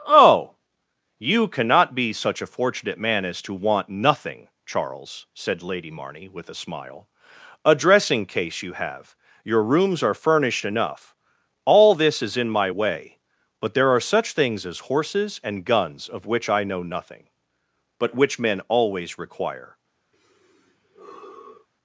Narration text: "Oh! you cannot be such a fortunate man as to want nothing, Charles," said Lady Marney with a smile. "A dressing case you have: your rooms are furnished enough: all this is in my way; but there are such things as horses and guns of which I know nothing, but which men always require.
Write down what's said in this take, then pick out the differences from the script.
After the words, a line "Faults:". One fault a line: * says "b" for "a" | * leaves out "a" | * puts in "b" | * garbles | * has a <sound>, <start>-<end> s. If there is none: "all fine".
"Oh! you cannot be such a fortunate man as to want nothing, Charles," said Lady Marney with a smile. "A dressing case you have: your rooms are furnished enough: all this is in my way; but there are such things as horses and guns of which I know nothing, but which men always require.
Faults:
* has a sigh, 20.1-21.7 s